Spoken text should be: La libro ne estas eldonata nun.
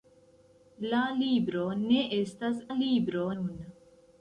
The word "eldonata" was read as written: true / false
false